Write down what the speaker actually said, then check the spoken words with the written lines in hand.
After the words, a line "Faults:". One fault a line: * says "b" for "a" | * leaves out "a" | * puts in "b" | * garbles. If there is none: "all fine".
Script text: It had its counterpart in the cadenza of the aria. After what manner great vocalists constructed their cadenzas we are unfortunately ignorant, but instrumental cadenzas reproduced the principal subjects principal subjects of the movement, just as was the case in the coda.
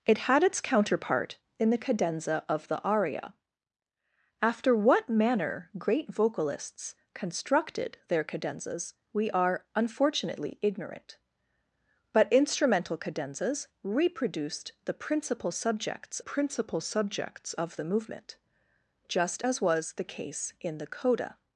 It had its counterpart in the cadenza of the aria. After what manner great vocalists constructed their cadenzas we are unfortunately ignorant, but instrumental cadenzas reproduced the principal subjects principal subjects of the movement, just as was the case in the coda.
Faults:
all fine